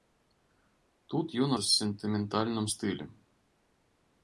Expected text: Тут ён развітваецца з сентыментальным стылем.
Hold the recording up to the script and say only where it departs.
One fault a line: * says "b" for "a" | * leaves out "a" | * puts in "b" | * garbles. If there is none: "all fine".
* leaves out "развітваецца"